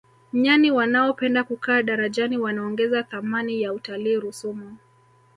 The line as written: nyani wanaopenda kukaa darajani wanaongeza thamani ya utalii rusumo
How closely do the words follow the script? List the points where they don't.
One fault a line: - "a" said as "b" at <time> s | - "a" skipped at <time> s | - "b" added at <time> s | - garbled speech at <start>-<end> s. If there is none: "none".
none